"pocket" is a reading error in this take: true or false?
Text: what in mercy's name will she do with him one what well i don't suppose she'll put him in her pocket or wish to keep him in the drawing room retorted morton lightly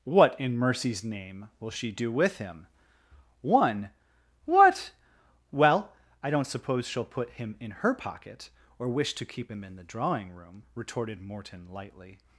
false